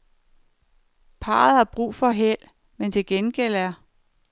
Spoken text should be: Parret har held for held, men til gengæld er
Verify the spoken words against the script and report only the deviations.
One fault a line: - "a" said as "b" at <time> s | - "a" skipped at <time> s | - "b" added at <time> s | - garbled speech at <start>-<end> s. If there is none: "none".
- "held" said as "brug" at 1.6 s